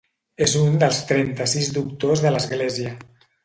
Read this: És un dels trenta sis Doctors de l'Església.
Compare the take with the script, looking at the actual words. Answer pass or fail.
pass